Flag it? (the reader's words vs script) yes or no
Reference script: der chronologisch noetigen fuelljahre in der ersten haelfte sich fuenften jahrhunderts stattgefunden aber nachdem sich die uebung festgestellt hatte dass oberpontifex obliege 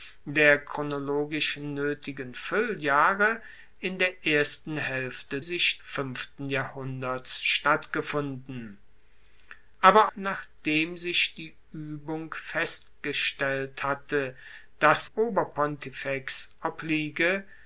no